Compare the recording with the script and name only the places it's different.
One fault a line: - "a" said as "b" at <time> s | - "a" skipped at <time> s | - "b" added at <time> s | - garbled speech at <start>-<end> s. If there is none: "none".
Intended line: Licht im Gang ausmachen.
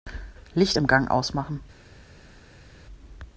none